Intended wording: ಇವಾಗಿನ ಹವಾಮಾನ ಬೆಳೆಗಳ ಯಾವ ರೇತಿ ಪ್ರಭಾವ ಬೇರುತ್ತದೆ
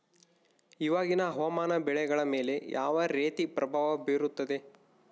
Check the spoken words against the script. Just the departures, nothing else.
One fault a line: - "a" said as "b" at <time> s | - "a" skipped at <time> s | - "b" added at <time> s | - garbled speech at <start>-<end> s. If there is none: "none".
- "ಮೇಲೆ" added at 2.2 s